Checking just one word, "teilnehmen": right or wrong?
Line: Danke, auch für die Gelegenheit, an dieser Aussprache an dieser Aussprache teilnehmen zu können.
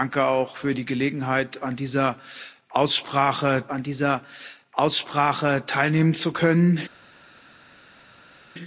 right